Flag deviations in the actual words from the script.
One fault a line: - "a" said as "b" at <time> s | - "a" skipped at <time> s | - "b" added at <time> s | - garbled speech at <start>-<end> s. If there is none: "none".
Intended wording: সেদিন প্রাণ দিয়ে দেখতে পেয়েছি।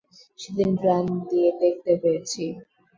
none